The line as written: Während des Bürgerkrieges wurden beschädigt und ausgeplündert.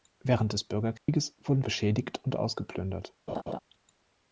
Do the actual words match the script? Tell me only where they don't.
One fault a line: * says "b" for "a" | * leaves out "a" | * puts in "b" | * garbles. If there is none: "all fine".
all fine